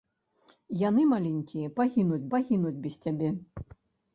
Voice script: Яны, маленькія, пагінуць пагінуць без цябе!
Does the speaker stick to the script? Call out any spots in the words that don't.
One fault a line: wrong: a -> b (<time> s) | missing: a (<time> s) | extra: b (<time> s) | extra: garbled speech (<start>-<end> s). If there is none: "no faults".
no faults